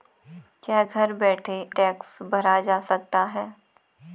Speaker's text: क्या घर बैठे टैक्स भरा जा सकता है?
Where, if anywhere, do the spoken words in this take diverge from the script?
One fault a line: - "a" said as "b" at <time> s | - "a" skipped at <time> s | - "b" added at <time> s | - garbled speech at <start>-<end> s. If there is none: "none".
none